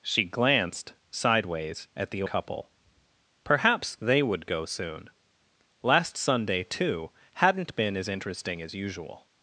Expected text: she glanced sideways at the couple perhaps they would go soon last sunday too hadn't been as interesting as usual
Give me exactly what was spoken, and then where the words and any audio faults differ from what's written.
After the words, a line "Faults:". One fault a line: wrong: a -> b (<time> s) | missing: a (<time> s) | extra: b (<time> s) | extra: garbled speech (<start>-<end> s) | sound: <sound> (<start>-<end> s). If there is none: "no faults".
she glanced sideways at the couple perhaps they would go soon last sunday too hadn't been as interesting as usual
Faults:
no faults